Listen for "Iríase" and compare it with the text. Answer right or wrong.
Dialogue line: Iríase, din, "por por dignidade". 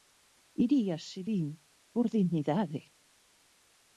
right